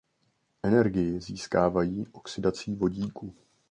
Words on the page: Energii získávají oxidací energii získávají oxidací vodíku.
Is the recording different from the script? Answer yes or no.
yes